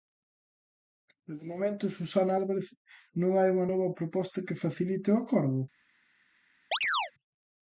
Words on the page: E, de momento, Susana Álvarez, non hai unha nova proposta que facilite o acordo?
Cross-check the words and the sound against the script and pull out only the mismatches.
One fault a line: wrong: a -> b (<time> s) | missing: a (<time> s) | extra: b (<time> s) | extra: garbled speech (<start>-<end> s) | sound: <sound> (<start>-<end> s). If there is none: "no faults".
sound: chirp (6.7-7.1 s)